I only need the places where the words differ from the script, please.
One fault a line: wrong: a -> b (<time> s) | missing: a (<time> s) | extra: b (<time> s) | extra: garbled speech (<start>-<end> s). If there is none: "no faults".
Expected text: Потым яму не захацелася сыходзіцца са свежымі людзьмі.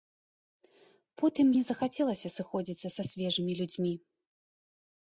missing: яму (1.5 s)